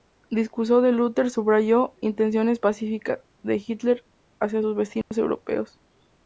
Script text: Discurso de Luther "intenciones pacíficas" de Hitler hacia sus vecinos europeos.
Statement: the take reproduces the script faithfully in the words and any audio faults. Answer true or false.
false